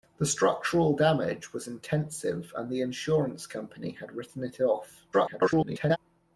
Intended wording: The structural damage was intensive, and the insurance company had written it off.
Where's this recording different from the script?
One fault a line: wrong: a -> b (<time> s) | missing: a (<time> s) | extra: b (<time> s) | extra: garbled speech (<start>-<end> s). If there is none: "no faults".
extra: garbled speech (5.1-6.0 s)